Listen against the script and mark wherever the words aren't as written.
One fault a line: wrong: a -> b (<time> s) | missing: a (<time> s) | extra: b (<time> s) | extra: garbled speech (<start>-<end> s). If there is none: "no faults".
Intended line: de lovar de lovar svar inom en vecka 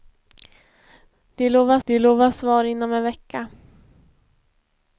no faults